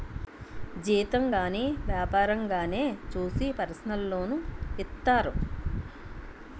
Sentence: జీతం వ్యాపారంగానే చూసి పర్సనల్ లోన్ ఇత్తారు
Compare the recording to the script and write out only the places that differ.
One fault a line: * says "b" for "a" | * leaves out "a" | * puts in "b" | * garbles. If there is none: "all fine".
* puts in "గాని"